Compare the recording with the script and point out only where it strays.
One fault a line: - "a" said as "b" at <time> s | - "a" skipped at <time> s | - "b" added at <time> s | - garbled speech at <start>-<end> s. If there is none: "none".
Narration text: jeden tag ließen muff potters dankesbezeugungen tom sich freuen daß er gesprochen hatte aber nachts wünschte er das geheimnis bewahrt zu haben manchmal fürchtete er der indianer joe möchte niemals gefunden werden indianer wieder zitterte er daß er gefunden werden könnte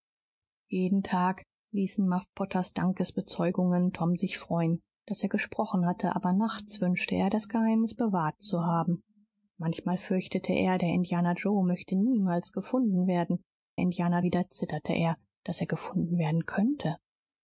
none